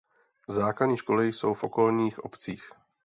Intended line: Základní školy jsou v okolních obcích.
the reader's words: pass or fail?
pass